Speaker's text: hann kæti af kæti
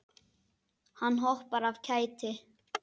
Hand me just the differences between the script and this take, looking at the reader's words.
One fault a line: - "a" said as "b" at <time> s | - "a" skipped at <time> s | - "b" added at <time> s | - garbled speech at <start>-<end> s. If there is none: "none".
- "kæti" said as "hoppar" at 1.2 s